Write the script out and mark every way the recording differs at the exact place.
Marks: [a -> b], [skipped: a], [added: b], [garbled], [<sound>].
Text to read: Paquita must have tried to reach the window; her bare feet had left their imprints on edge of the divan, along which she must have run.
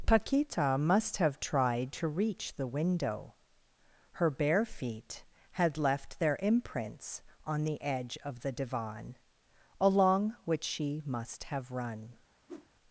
Paquita must have tried to reach the window; her bare feet had left their imprints on [added: the] edge of the divan, along which she must have run. [whoosh]